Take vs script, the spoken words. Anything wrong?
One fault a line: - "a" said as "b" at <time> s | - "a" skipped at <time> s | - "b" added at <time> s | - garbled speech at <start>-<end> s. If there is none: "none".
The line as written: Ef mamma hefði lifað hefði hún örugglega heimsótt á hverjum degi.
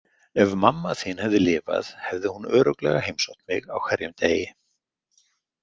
- "þín" added at 1.0 s
- "mig" added at 3.5 s